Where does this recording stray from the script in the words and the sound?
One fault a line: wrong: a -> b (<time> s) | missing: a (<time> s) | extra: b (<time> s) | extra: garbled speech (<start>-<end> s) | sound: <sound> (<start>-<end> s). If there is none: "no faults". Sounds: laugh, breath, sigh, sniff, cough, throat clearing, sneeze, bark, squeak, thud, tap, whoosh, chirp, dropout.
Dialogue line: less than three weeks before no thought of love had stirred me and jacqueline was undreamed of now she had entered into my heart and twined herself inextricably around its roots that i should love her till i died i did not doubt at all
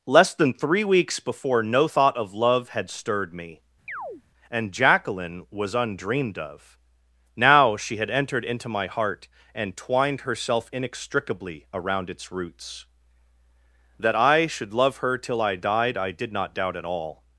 sound: chirp (3.9-4.2 s)